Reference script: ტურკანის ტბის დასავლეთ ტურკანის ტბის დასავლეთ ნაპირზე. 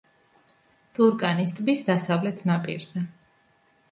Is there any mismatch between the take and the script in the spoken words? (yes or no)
yes